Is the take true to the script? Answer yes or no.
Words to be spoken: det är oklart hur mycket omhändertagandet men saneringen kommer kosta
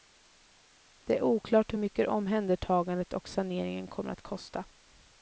no